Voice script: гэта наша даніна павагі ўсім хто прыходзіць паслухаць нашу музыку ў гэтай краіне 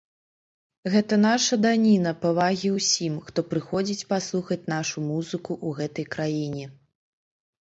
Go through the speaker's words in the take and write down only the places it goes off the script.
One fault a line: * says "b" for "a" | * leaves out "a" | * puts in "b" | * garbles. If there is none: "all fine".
all fine